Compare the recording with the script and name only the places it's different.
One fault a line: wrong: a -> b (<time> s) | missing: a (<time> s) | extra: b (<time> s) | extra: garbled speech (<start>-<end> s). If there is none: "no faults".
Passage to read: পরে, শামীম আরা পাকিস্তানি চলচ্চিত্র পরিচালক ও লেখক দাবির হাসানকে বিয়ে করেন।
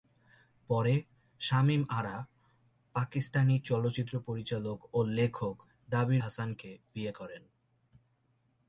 no faults